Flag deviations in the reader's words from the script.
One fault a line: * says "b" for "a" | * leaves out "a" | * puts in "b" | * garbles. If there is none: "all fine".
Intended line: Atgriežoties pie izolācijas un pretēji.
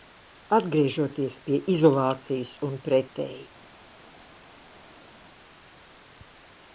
all fine